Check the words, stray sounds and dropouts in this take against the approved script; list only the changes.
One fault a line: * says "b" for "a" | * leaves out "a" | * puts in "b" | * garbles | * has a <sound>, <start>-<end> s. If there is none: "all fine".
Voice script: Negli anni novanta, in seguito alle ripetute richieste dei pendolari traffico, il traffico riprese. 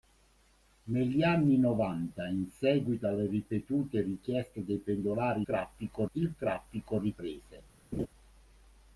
* has a laugh, 7.9-8.1 s